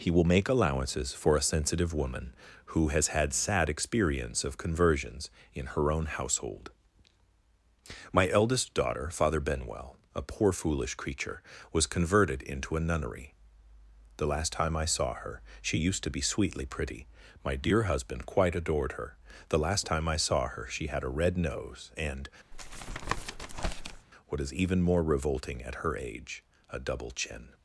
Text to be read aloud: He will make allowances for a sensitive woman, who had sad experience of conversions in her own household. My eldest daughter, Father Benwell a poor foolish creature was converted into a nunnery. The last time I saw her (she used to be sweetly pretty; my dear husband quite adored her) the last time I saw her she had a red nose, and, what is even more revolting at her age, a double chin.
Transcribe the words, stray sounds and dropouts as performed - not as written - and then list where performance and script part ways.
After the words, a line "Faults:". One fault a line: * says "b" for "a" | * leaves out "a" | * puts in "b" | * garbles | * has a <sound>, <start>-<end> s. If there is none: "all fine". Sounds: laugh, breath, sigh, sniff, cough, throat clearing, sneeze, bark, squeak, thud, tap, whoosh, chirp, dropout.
He will make allowances for a sensitive woman, who has had sad experience of conversions in her own household. My eldest daughter, Father Benwell a poor foolish creature was converted into a nunnery. The last time I saw her (she used to be sweetly pretty; my dear husband quite adored her) the last time I saw her she had a red nose, and, what is even more revolting at her age, a double chin.
Faults:
* puts in "has"
* has a tap, 22.5-24.1 s